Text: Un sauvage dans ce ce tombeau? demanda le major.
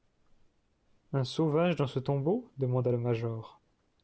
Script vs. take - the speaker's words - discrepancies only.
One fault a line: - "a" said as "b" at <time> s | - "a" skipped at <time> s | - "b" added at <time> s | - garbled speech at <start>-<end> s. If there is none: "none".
- "ce" skipped at 2.0 s